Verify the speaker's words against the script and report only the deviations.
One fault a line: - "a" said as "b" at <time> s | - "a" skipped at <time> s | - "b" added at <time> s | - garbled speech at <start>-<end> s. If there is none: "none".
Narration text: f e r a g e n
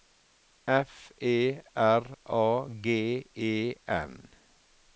none